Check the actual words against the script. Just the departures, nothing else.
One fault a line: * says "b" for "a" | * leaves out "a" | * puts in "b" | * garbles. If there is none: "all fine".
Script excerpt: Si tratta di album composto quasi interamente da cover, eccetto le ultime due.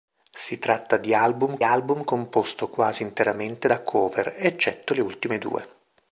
* puts in "album"